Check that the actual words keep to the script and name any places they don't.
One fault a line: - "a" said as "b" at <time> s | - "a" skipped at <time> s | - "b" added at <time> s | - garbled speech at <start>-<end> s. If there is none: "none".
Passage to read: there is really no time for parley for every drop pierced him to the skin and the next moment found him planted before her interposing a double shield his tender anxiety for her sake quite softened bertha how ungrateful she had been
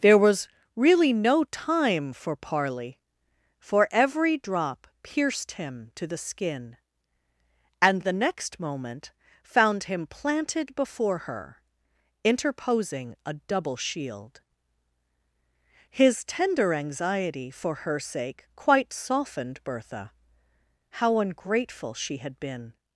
- "is" said as "was" at 0.2 s